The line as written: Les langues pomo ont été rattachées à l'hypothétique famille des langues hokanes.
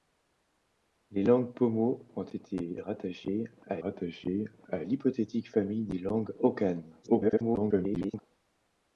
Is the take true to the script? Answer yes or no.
no